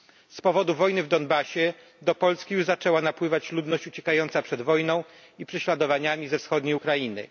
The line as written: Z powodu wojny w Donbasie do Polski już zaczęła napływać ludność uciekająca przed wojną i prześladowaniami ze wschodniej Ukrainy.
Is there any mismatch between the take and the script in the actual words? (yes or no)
no